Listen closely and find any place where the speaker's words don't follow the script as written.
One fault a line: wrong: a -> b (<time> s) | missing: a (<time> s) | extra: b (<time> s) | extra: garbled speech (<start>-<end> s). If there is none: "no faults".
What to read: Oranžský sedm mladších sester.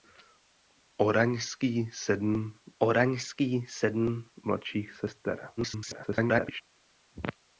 extra: oranžský sedm (2.8 s)
extra: garbled speech (5.6-6.6 s)